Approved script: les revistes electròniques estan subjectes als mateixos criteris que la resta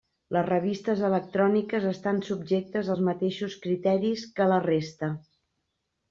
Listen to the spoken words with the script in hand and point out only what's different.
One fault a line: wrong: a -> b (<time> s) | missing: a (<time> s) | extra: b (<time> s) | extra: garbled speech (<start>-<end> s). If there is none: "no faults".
no faults